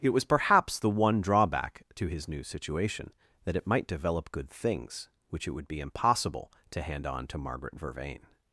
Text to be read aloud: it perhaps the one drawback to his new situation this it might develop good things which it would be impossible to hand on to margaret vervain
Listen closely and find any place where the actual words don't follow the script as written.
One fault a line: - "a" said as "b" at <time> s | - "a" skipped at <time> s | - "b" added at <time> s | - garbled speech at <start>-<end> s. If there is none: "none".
- "was" added at 0.1 s
- "this" said as "that" at 3.4 s